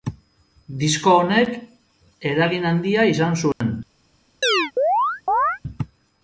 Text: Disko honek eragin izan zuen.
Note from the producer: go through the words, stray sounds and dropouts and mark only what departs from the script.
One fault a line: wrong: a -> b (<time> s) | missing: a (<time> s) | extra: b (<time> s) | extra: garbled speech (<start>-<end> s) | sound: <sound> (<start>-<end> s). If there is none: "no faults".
extra: handia (2.8 s)
sound: dropout (3.5-3.6 s)
sound: chirp (4.4-5.6 s)